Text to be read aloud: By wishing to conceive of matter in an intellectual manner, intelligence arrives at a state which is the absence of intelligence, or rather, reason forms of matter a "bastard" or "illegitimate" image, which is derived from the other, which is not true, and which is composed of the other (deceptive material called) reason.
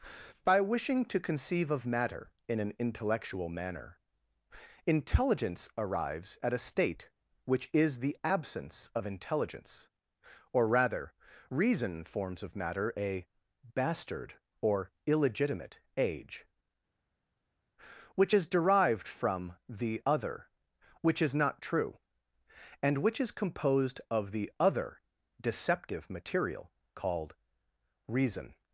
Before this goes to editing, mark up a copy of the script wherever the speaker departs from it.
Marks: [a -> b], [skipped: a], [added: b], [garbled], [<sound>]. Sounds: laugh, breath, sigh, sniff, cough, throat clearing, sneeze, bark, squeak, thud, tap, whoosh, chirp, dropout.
By wishing to conceive of matter in an intellectual manner, intelligence arrives at a state which is the absence of intelligence, or rather, reason forms of matter a "bastard" or "illegitimate" [image, -> age] which is derived from the other, which is not true, and which is composed of the other (deceptive material called) reason.